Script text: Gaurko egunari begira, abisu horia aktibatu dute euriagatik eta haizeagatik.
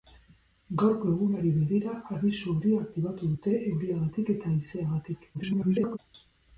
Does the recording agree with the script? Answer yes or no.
no